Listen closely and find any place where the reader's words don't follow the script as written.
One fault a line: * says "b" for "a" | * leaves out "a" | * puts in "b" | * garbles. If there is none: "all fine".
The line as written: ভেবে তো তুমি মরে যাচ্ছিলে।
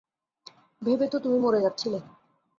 all fine